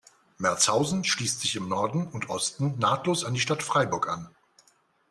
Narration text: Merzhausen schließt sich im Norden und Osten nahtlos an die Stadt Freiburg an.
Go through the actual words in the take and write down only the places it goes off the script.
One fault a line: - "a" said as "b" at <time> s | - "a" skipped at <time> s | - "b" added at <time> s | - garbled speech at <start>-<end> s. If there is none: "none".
none